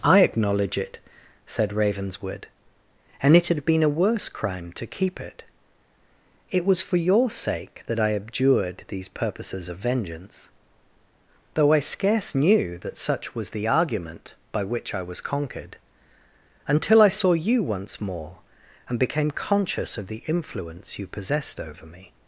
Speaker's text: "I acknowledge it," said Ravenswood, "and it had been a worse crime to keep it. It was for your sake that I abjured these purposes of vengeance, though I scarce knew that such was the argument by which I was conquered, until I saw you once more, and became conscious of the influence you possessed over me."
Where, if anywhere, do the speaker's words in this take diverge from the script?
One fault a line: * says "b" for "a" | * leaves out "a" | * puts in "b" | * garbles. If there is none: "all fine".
all fine